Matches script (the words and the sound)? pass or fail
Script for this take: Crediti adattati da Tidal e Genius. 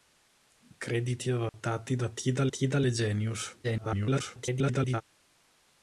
fail